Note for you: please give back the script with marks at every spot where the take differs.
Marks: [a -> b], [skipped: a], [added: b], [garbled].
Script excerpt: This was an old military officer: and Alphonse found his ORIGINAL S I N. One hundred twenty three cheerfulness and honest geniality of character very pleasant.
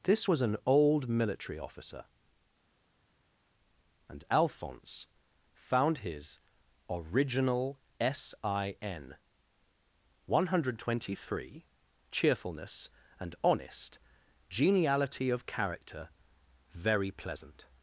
This was an old military officer: and Alphonse found his ORIGINAL S I N. One hundred twenty three cheerfulness and honest geniality of character very pleasant.